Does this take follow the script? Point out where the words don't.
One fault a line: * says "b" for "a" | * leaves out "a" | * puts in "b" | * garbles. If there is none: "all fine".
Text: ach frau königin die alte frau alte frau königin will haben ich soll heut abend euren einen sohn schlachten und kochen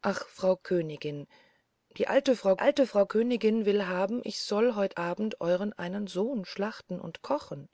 all fine